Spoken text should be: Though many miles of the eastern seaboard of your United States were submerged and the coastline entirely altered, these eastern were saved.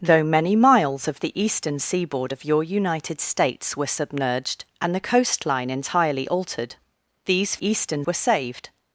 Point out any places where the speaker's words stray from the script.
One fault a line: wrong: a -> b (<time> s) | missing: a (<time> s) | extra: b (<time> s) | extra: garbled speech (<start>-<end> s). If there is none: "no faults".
no faults